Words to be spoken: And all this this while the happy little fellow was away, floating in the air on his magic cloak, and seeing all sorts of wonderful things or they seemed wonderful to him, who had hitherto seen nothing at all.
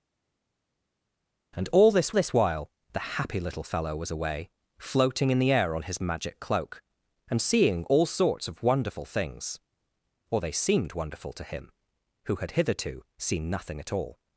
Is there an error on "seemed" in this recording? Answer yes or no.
no